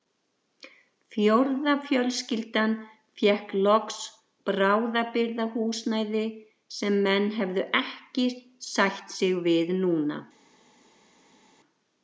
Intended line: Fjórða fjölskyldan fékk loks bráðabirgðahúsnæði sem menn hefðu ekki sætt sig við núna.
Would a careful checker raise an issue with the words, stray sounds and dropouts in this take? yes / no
no